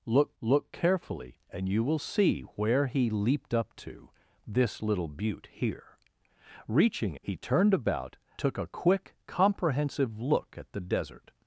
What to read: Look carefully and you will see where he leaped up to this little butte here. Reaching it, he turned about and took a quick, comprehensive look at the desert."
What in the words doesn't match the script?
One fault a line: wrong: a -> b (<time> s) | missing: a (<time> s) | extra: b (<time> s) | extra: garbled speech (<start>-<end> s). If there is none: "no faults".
extra: look (0.4 s)
missing: it (7.2 s)
missing: and (8.2 s)